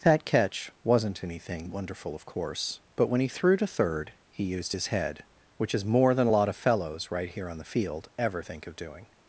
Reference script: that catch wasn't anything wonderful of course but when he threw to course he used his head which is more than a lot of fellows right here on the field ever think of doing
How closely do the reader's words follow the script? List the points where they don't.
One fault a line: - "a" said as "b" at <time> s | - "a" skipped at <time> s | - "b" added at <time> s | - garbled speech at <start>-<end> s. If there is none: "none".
- "course" said as "third" at 3.7 s